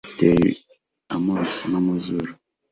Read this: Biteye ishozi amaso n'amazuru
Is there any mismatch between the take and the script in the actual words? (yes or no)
yes